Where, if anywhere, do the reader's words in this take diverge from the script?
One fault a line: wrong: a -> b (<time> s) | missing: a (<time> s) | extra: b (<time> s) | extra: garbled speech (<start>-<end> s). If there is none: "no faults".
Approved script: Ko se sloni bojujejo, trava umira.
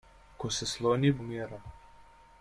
missing: bojujejo trava (1.1 s)